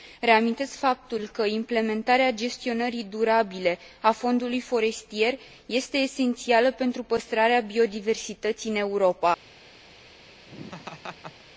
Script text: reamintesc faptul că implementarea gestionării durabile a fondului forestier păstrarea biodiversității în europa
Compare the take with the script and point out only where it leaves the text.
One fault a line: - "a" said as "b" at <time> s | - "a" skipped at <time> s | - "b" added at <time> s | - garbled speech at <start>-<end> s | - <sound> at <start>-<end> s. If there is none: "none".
- "este esențială pentru" added at 5.7 s
- laugh at 10.5-11.4 s